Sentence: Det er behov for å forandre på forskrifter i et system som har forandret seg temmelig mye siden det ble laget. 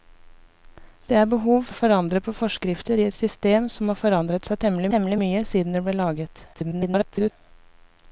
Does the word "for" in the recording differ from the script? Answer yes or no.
yes